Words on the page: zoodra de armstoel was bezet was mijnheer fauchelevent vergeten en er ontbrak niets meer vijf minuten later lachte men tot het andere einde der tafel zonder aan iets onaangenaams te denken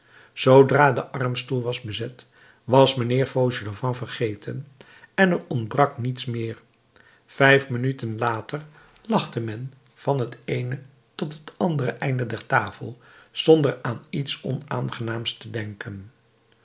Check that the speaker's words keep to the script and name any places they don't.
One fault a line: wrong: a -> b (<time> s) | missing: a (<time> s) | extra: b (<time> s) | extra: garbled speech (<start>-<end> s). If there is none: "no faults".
extra: van het eene (9.9 s)